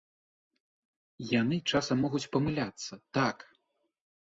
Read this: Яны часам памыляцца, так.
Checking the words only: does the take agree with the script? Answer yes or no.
no